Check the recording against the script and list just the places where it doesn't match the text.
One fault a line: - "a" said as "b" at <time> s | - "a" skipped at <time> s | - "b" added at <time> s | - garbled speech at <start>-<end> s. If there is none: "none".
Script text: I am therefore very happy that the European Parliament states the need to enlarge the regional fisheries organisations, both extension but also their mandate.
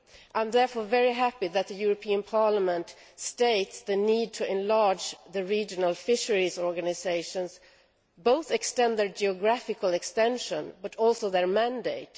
- "extend their geographical" added at 8.5 s